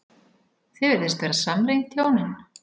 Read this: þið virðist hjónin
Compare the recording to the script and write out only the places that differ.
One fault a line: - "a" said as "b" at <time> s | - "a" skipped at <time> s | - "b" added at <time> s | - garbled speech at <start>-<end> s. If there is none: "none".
- "vera samrýnd" added at 1.3 s